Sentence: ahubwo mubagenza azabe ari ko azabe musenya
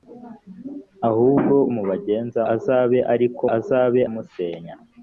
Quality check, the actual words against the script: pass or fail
pass